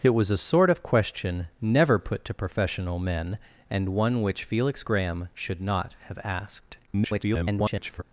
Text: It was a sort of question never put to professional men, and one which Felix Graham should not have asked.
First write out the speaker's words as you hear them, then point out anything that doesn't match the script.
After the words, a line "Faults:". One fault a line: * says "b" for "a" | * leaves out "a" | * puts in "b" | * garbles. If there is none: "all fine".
It was a sort of question never put to professional men, and one which Felix Graham should not have asked. [garbled]
Faults:
* garbles